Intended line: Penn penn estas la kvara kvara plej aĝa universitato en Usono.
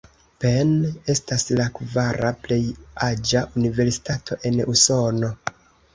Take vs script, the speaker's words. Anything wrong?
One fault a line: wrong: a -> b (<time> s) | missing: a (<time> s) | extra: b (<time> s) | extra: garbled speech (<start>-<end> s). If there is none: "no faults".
missing: penn (0.7 s)
missing: kvara (2.3 s)